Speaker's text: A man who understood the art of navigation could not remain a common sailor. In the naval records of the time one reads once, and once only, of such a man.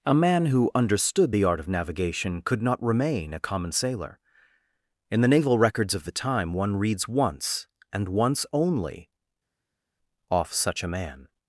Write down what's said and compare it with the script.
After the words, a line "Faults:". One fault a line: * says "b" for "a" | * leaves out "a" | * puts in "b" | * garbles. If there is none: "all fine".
A man who understood the art of navigation could not remain a common sailor. In the naval records of the time one reads once, and once only, off such a man.
Faults:
* says "off" for "of"